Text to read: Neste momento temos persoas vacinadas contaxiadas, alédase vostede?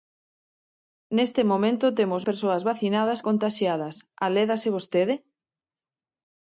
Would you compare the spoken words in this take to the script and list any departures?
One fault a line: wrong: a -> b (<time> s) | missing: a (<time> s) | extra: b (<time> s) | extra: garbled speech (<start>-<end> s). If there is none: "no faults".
no faults